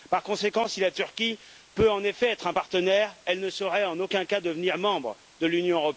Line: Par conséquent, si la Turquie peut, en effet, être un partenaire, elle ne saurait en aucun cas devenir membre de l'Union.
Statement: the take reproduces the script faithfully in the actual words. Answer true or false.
true